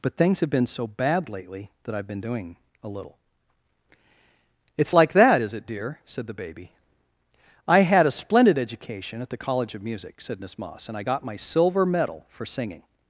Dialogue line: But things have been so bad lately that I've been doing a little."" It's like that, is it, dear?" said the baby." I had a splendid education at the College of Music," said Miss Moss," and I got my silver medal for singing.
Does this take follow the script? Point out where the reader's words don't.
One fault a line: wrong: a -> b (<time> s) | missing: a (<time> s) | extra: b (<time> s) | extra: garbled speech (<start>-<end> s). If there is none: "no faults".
no faults